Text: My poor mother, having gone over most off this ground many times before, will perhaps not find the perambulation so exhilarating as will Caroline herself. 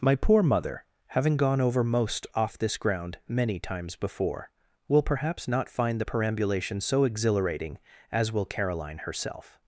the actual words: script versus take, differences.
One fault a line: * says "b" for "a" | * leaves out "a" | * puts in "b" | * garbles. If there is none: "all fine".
all fine